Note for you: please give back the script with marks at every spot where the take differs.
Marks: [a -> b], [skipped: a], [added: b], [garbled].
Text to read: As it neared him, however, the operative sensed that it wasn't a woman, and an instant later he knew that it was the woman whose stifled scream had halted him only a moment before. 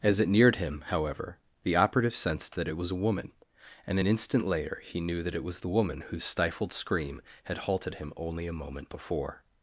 As it neared him, however, the operative sensed that it [wasn't -> was] a woman, and an instant later he knew that it was the woman whose stifled scream had halted him only a moment before.